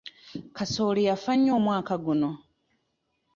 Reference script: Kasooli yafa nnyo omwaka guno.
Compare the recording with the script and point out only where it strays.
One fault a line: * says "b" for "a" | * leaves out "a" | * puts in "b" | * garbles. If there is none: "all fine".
all fine